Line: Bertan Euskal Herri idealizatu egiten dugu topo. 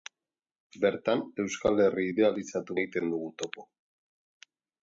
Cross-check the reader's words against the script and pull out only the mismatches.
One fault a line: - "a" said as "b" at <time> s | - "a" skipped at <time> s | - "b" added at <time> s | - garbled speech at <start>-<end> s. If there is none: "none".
none